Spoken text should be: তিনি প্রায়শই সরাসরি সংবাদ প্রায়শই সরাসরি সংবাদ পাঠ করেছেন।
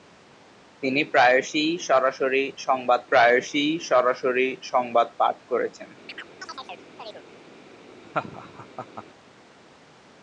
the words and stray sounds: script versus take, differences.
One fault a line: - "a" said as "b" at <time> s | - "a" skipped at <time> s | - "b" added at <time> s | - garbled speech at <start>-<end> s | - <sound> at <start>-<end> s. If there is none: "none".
- chirp at 6.1-7.3 s
- laugh at 8.0-9.1 s